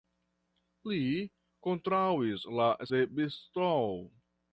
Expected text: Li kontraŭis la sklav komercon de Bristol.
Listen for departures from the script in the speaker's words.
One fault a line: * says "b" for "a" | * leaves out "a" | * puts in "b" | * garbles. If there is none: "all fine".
* leaves out "sklav komercon"